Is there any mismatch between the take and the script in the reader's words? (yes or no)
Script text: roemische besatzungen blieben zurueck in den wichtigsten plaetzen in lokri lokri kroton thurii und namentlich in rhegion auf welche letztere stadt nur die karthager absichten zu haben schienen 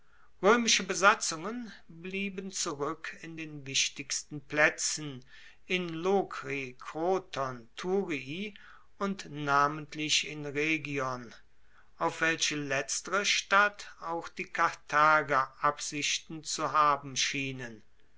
yes